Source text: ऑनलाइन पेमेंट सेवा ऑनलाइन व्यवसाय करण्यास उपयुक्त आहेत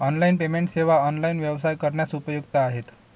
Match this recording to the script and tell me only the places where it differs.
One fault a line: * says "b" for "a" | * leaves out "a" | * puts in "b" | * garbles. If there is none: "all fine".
all fine